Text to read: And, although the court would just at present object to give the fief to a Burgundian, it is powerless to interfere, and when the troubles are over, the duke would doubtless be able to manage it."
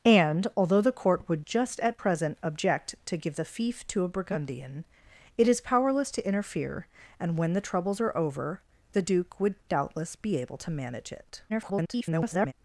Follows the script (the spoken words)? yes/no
no